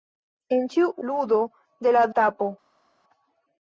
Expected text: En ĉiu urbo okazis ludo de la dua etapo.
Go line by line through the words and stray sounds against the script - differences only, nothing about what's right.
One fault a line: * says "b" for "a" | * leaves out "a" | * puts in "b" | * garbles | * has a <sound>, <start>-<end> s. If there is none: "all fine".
* leaves out "urbo okazis"
* leaves out "dua"